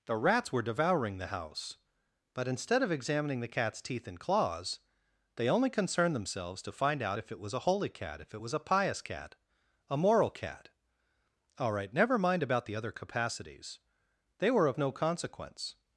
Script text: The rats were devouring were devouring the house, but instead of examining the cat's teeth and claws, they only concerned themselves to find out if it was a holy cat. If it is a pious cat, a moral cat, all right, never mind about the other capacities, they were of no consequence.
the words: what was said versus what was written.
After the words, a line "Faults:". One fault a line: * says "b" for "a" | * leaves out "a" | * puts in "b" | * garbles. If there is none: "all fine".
The rats were devouring the house, but instead of examining the cat's teeth and claws, they only concerned themselves to find out if it was a holy cat. If it was a pious cat, a moral cat, all right, never mind about the other capacities, they were of no consequence.
Faults:
* leaves out "were devouring"
* says "was" for "is"